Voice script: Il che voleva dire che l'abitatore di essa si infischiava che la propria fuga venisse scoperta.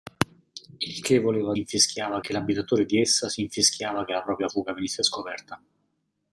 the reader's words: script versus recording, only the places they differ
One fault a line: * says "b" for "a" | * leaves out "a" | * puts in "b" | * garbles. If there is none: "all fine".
* says "infischiava" for "dire"